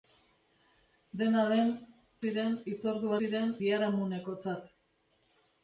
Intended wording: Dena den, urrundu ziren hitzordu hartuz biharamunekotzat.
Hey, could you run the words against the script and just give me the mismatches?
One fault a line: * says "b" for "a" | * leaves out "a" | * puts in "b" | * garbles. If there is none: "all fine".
* leaves out "urrundu"
* says "ziren" for "hartuz"